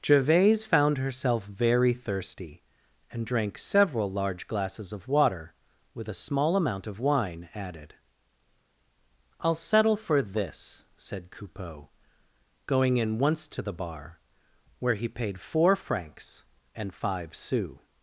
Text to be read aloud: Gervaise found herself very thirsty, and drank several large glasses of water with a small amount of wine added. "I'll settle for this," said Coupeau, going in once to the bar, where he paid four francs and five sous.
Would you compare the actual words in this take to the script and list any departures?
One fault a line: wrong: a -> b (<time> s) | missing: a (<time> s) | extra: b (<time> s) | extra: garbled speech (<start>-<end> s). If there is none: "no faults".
no faults